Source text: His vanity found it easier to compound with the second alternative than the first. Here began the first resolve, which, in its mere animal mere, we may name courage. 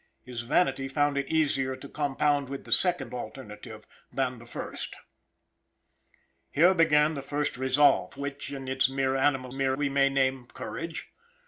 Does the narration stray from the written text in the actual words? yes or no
no